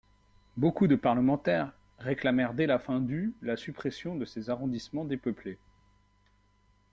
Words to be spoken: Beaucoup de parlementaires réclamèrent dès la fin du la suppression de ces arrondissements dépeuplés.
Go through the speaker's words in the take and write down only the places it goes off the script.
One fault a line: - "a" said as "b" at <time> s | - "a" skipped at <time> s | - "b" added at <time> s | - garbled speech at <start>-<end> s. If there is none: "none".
none